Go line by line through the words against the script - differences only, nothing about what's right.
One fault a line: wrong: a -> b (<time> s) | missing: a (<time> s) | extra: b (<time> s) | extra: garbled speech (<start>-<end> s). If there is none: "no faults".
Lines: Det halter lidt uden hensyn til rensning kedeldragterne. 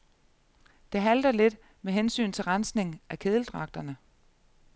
wrong: uden -> med (1.8 s)
extra: af (3.1 s)